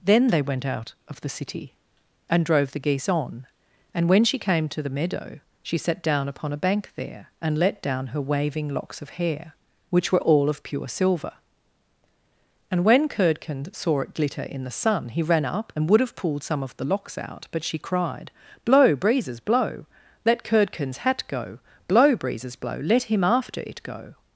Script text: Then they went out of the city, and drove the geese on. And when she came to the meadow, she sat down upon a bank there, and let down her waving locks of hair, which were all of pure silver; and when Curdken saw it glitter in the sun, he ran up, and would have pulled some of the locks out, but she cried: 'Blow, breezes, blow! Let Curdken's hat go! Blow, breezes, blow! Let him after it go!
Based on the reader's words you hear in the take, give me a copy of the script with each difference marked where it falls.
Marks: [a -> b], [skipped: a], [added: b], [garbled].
Then they went out of the city, and drove the geese on. And when she came to the meadow, she sat down upon a bank there, and let down her waving locks of hair, which were all of pure silver; and when Curdken saw it glitter in the sun, he ran up, and would have pulled some of the locks out, but she cried: 'Blow, breezes, blow! Let Curdken's hat go! Blow, breezes, blow! Let him after it go!